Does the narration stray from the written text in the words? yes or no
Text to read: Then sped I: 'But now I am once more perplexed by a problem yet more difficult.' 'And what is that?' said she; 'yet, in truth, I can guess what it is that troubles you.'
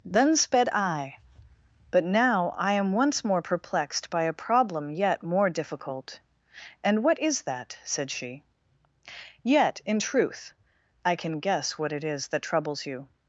no